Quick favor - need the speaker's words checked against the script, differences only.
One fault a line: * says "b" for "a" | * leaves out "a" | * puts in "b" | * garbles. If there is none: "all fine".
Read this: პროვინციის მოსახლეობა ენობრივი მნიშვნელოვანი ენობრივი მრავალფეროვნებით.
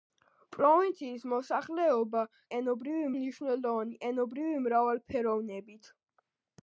all fine